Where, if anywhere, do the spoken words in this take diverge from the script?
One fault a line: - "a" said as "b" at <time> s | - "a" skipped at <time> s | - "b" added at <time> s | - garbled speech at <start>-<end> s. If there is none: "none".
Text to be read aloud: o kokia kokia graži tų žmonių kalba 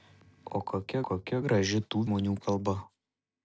none